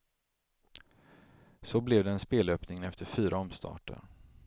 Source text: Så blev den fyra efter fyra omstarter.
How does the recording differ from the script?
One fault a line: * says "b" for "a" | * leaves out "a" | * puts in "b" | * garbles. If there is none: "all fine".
* says "spelöppningen" for "fyra"